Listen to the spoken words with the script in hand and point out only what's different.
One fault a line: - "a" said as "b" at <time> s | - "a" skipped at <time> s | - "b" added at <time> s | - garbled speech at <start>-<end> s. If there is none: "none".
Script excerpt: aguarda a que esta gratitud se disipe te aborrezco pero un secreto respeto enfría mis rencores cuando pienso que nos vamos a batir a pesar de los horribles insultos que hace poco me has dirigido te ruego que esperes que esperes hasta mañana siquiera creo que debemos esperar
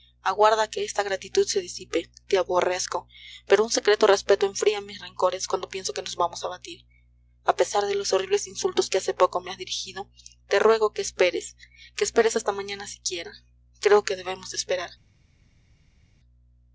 none